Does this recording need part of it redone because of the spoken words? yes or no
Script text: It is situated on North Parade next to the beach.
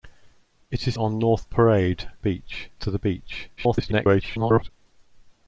yes